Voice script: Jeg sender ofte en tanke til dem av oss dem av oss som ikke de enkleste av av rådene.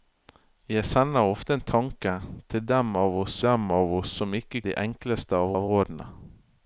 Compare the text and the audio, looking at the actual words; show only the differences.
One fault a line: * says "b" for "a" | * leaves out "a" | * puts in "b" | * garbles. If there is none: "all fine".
all fine